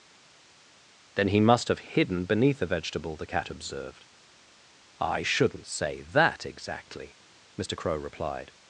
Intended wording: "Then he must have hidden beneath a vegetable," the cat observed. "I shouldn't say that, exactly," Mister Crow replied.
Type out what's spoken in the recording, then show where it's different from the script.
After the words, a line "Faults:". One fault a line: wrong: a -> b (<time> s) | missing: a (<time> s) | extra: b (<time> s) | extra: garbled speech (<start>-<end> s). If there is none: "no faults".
"Then he must have hidden beneath a vegetable," the cat observed. "I shouldn't say that, exactly," Mister Crow replied.
Faults:
no faults